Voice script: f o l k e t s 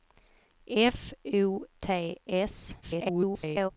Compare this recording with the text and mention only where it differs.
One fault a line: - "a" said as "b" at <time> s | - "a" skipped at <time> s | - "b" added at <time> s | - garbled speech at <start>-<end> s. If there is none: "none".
- "l k e" skipped at 1.6 s
- garbled speech at 2.8-3.7 s